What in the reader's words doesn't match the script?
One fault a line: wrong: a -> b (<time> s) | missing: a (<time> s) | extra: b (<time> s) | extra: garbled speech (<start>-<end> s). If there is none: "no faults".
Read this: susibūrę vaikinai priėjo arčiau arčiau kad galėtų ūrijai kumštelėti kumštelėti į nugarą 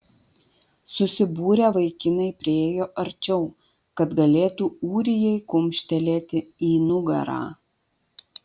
missing: arčiau (3.4 s)
missing: kumštelėti (6.5 s)